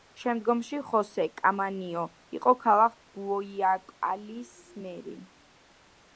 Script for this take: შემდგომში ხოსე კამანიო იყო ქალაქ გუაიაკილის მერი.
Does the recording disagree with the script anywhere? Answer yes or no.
no